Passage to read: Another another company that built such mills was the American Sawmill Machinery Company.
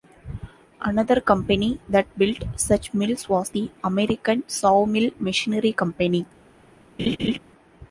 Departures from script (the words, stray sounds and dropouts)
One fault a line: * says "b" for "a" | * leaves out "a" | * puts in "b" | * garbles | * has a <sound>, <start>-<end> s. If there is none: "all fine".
* leaves out "another"
* has a laugh, 7.0-7.4 s